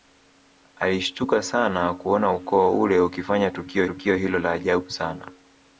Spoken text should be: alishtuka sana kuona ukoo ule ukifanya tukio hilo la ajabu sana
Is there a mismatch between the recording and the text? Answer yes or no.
yes